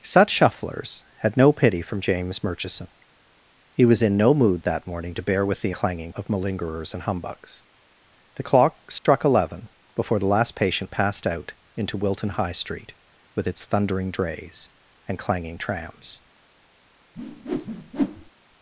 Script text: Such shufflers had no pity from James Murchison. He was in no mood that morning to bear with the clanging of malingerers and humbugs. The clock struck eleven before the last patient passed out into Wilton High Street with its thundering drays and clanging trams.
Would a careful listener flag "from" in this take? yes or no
no